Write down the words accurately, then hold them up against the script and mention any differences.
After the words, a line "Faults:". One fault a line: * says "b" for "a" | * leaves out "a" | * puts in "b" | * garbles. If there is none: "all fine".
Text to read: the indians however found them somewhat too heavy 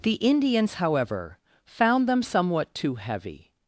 the indians however found them somewhat too heavy
Faults:
all fine